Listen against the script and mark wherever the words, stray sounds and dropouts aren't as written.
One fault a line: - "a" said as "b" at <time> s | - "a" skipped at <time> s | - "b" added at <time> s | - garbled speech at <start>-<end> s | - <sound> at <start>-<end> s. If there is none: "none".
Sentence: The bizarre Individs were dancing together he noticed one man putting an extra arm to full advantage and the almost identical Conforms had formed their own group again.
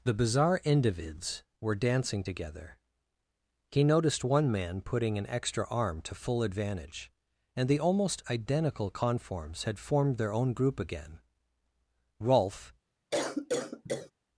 - "Rolf" added at 12.2 s
- cough at 13.1-14.1 s